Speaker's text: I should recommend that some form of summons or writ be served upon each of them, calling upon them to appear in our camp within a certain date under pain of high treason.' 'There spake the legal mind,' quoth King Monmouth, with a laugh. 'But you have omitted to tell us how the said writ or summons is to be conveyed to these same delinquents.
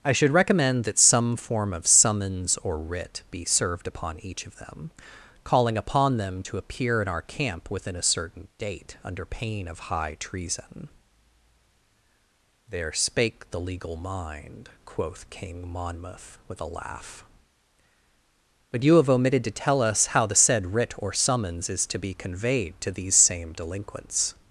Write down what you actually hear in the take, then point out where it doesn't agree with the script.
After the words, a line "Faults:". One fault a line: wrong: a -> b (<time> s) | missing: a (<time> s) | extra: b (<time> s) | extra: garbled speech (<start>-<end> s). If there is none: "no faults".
I should recommend that some form of summons or writ be served upon each of them, calling upon them to appear in our camp within a certain date under pain of high treason.' 'There spake the legal mind,' quoth King Monmouth, with a laugh. 'But you have omitted to tell us how the said writ or summons is to be conveyed to these same delinquents.
Faults:
no faults